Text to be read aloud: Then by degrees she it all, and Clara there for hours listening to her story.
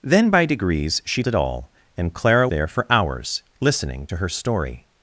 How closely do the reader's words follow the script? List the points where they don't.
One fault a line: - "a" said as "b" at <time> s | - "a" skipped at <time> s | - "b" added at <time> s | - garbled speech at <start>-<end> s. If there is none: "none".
none